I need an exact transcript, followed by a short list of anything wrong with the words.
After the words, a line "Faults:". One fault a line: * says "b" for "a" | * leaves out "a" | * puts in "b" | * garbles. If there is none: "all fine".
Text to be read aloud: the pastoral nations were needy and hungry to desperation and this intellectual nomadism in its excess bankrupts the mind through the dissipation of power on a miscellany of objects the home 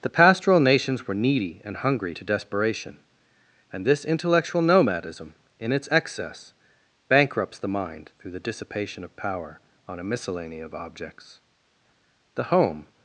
the pastoral nations were needy and hungry to desperation and this intellectual nomadism in its excess bankrupts the mind through the dissipation of power on a miscellany of objects the home
Faults:
all fine